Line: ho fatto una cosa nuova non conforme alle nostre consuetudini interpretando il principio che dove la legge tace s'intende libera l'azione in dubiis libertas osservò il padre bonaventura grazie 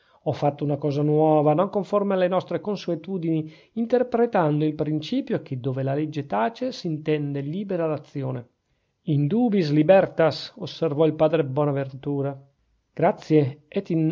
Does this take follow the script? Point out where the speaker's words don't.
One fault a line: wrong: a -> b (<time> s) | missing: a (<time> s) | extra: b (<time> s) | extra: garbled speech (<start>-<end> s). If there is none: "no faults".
no faults